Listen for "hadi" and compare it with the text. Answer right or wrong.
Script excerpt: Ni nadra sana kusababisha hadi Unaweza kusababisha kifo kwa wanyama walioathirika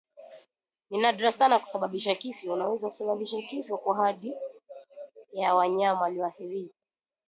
wrong